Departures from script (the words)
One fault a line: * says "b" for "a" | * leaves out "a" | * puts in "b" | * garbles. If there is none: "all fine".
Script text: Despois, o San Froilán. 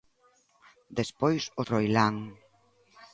* leaves out "San"